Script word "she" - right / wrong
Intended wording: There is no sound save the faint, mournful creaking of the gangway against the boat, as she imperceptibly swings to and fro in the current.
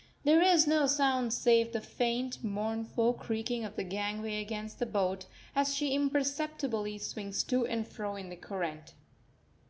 right